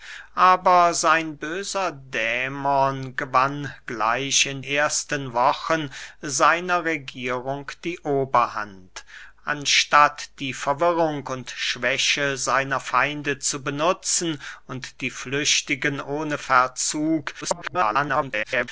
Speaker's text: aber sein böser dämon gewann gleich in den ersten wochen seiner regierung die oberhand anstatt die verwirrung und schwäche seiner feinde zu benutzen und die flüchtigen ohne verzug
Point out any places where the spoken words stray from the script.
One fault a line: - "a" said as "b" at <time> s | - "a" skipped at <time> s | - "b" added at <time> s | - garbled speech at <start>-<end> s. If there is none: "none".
- "den" skipped at 4.6 s
- garbled speech at 17.4-18.7 s